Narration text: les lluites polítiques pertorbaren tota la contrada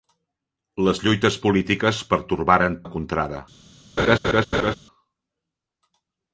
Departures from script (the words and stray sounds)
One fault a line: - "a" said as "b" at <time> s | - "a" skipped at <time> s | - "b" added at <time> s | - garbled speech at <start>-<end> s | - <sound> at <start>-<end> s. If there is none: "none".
- "tota" skipped at 2.8 s
- laugh at 4.0-4.7 s